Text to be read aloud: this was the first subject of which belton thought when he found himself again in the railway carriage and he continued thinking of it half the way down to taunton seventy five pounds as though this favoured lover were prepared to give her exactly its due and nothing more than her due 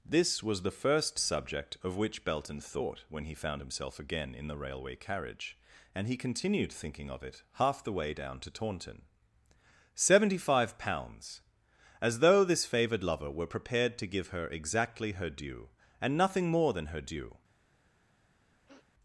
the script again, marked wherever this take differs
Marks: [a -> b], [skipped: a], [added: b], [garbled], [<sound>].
this was the first subject of which belton thought when he found himself again in the railway carriage and he continued thinking of it half the way down to taunton seventy five pounds as though this favoured lover were prepared to give her exactly [its -> her] due and nothing more than her due [sniff]